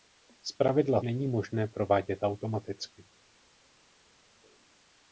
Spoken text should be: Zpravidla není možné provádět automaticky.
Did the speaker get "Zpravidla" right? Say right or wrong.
right